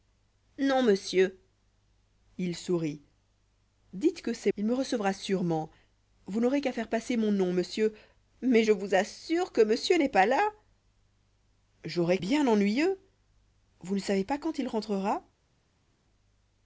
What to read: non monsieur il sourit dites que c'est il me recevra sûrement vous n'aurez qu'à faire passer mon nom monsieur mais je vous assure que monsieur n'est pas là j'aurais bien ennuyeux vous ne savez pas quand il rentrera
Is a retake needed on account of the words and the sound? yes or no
no